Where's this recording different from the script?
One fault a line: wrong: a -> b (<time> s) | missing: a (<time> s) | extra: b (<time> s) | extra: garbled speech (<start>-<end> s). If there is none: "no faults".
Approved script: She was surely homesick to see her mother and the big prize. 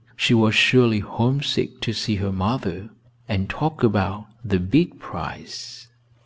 extra: talk about (3.5 s)